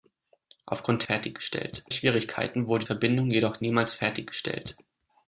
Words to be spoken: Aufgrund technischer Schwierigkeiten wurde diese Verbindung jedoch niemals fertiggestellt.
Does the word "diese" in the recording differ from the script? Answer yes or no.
yes